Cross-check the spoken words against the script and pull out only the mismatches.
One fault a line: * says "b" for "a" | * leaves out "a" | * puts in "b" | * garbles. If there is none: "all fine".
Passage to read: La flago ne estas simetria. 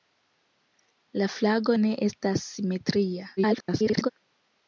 * garbles